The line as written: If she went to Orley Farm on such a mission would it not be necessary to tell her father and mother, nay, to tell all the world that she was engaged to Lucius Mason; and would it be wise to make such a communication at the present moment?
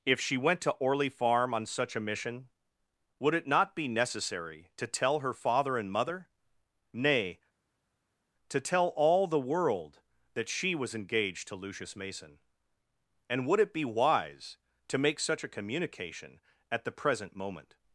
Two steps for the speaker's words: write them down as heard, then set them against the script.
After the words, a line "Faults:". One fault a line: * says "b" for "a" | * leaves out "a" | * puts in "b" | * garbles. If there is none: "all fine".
If she went to Orley Farm on such a mission would it not be necessary to tell her father and mother, nay, to tell all the world that she was engaged to Lucius Mason; and would it be wise to make such a communication at the present moment?
Faults:
all fine